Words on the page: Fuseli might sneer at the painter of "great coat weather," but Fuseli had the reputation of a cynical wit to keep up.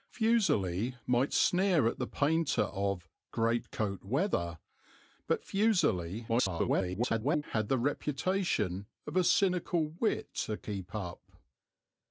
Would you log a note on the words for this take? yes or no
yes